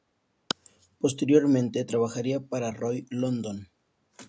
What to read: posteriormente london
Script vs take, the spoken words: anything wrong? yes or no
yes